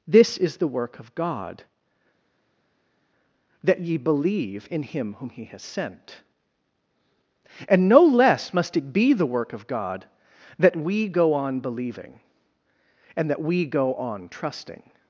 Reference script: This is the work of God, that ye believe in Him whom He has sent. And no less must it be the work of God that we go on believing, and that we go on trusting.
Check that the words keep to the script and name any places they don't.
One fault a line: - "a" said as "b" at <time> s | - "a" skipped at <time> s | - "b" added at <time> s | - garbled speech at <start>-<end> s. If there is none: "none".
none